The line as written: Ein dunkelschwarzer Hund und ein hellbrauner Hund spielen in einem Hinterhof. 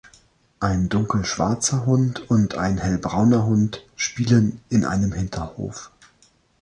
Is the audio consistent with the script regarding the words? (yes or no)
yes